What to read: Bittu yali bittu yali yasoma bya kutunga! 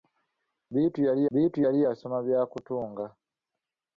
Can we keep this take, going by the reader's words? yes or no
yes